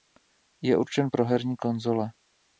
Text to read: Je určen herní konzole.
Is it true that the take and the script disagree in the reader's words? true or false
true